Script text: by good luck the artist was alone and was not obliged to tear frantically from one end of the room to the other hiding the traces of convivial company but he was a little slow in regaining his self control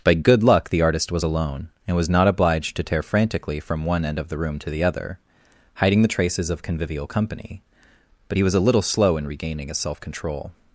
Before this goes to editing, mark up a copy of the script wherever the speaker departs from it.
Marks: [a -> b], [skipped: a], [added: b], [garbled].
by good luck the artist was alone and was not obliged to tear frantically from one end of the room to the other hiding the traces of convivial company but he was a little slow in regaining his self control